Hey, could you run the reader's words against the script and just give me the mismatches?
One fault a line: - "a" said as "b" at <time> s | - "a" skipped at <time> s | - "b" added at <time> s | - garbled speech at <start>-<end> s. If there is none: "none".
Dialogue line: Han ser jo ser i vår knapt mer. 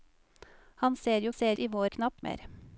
none